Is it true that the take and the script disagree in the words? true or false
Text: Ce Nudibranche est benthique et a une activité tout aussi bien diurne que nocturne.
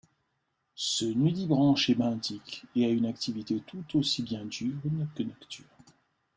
false